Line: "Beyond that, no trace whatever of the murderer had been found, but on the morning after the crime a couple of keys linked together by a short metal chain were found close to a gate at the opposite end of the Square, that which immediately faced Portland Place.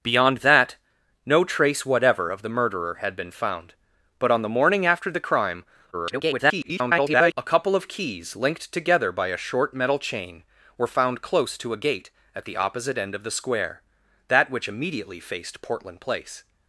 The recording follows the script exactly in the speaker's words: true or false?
false